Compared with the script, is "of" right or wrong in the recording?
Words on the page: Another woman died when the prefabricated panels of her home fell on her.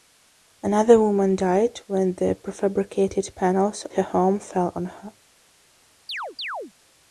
wrong